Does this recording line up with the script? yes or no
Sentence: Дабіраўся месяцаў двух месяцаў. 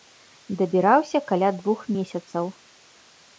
no